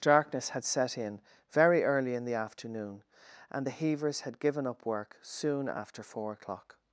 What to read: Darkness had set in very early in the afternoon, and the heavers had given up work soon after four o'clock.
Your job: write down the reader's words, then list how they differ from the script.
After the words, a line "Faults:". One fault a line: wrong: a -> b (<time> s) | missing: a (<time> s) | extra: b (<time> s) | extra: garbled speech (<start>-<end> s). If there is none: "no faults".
Darkness had set in very early in the afternoon, and the heavers had given up work soon after four o'clock.
Faults:
no faults